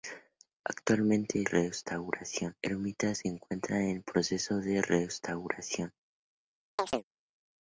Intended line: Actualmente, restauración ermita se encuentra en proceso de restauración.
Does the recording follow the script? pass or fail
pass